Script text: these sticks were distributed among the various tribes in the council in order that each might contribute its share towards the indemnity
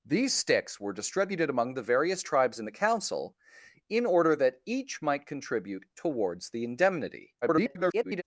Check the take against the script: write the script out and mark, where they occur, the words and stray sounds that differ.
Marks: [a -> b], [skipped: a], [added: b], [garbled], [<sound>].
these sticks were distributed among the various tribes in the council in order that each might contribute [skipped: its share] towards the indemnity [garbled]